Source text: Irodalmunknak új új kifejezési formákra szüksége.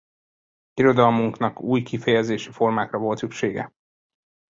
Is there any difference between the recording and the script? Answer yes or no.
yes